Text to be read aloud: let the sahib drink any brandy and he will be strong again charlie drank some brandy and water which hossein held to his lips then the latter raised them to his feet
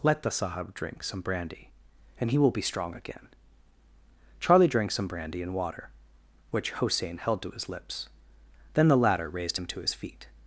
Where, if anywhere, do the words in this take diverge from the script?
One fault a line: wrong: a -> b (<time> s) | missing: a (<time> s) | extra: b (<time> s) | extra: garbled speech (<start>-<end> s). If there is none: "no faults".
wrong: any -> some (1.0 s)
wrong: them -> him (9.5 s)